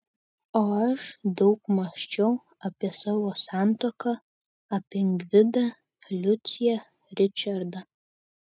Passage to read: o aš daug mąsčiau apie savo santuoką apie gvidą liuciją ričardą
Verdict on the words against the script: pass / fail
pass